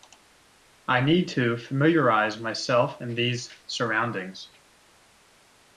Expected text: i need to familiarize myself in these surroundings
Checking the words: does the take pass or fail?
pass